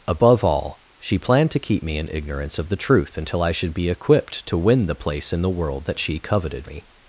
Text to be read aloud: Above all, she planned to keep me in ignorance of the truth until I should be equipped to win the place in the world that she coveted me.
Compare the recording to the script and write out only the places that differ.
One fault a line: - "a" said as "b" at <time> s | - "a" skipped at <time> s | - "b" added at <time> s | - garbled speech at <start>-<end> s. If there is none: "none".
none